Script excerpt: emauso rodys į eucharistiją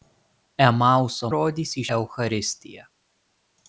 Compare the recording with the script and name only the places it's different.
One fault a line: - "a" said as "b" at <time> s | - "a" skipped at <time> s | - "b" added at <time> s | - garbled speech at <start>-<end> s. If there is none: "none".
none